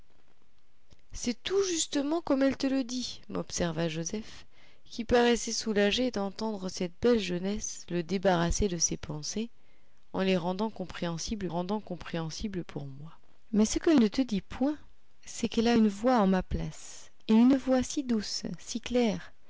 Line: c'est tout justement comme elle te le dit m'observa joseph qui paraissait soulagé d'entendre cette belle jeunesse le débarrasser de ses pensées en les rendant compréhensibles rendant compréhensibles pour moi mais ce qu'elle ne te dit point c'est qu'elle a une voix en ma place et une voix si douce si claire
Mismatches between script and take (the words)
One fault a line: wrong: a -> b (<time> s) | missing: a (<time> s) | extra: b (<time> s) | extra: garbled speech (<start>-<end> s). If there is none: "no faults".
no faults